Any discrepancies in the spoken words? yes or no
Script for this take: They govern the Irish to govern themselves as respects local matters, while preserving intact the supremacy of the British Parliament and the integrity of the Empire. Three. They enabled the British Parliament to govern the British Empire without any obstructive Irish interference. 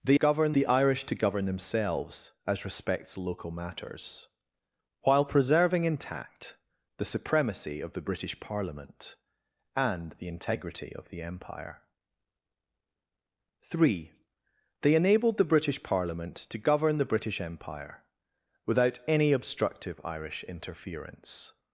no